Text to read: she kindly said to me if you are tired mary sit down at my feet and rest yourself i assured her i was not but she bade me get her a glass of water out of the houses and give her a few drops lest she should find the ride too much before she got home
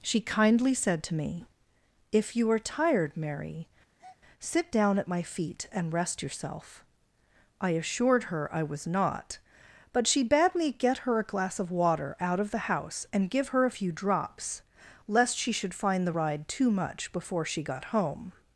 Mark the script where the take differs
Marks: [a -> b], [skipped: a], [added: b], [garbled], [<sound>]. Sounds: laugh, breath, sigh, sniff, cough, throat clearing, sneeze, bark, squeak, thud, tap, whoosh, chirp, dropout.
she kindly said to me if you are tired mary [breath] sit down at my feet and rest yourself i assured her i was not but she bade me get her a glass of water out of the [houses -> house] and give her a few drops lest she should find the ride too much before she got home